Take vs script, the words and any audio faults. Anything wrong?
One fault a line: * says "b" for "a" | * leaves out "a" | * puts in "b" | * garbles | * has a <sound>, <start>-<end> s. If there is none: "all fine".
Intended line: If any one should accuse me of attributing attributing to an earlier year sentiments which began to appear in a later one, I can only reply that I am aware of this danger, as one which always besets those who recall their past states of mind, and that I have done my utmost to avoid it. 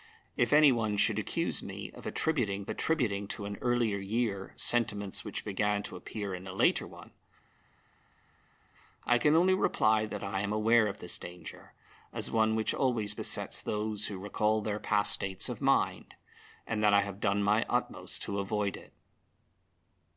all fine